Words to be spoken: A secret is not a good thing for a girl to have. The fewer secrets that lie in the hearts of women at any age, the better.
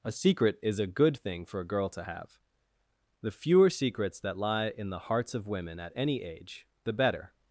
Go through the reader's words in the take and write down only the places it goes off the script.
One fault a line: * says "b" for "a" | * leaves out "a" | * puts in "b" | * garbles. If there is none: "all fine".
* leaves out "not"